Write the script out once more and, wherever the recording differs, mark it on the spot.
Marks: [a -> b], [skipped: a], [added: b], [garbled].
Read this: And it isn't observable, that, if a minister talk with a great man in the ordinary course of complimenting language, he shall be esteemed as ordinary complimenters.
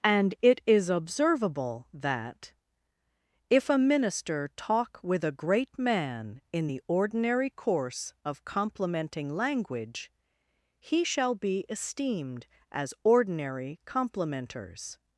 And it [isn't -> is] observable, that, if a minister talk with a great man in the ordinary course of complimenting language, he shall be esteemed as ordinary complimenters.